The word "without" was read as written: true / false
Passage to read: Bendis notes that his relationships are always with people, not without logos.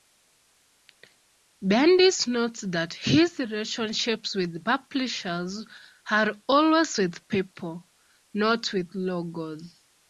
false